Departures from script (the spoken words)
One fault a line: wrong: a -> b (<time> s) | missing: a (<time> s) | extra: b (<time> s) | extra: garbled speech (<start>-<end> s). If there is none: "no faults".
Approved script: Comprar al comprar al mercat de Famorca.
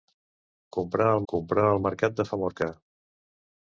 no faults